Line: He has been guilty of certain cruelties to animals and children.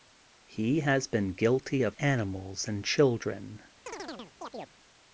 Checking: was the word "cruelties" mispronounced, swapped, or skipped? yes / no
yes